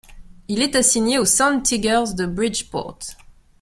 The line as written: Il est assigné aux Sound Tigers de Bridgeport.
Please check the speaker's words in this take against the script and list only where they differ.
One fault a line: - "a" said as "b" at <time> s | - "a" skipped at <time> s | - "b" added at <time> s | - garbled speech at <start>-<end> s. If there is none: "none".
none